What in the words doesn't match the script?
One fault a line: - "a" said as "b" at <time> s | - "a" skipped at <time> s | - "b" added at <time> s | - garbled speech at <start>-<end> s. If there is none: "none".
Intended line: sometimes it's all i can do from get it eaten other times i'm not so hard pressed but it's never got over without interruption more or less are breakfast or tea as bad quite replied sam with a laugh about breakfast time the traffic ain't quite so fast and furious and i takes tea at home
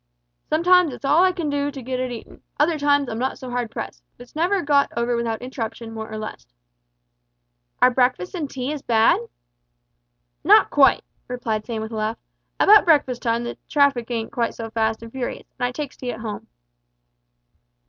- "from" said as "to" at 1.7 s
- "or" said as "and" at 8.3 s
- "not" added at 10.4 s